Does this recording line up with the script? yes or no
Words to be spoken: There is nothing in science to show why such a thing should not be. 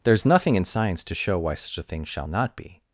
no